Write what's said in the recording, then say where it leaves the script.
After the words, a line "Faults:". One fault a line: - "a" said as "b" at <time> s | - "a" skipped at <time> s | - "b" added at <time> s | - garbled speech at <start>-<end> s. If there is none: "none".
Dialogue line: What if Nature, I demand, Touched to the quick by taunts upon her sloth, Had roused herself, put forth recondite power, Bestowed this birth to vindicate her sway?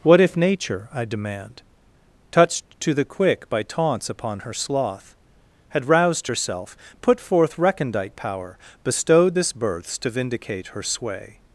What if Nature, I demand, Touched to the quick by taunts upon her sloth, Had roused herself, put forth recondite power, Bestowed this births to vindicate her sway?
Faults:
- "birth" said as "births" at 9.5 s